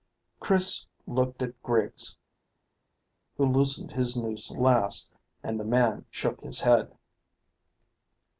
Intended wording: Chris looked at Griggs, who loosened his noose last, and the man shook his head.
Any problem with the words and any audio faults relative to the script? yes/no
no